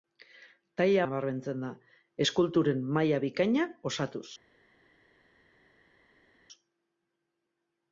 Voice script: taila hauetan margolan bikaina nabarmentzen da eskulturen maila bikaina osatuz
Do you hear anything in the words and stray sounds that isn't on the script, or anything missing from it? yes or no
yes